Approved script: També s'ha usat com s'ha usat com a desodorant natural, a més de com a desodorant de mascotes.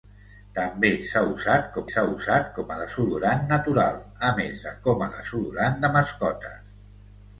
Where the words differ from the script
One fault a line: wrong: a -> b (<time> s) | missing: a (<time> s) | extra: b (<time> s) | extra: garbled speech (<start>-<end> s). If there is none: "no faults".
no faults